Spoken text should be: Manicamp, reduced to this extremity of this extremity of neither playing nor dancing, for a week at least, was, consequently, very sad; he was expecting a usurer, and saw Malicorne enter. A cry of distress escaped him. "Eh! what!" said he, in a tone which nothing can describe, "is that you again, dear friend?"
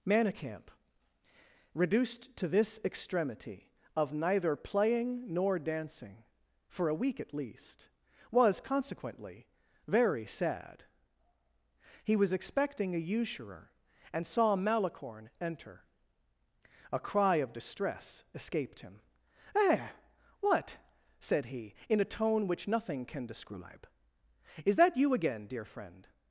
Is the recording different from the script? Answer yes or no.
yes